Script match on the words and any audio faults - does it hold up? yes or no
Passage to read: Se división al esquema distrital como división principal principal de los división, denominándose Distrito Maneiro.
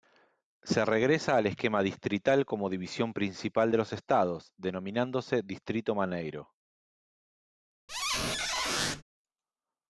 no